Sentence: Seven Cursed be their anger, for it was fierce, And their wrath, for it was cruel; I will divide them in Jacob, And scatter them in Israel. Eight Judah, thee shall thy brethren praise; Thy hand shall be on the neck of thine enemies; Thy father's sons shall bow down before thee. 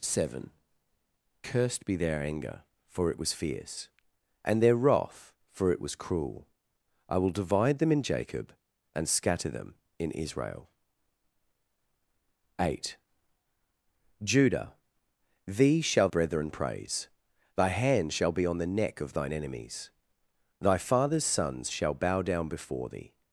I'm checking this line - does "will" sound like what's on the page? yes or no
yes